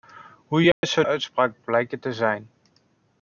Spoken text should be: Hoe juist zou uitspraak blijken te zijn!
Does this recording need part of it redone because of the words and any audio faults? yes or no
yes